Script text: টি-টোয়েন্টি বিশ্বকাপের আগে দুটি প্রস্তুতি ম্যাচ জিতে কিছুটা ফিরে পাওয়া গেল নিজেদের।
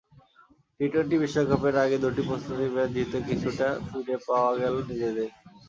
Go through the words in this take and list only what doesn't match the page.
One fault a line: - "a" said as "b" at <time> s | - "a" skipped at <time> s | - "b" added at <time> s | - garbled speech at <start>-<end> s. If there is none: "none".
none